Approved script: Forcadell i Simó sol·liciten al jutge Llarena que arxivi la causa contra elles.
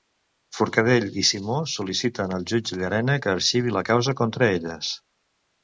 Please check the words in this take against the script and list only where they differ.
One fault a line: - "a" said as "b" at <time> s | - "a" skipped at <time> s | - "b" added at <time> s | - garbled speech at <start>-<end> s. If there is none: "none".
none